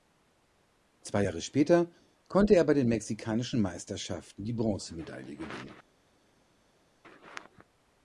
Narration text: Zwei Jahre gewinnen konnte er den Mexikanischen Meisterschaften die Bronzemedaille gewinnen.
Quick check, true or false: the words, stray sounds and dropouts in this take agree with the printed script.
false